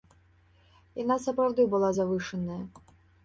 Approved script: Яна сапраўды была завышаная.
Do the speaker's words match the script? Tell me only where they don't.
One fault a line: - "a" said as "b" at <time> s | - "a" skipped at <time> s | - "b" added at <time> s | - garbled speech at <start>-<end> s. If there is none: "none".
none